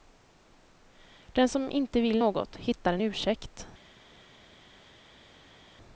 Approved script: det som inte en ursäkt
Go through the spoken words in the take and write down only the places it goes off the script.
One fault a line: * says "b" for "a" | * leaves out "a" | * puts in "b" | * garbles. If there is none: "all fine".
* says "den" for "det"
* puts in "vill något hittar"